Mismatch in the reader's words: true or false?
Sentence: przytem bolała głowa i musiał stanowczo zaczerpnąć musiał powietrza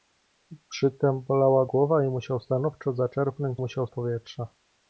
false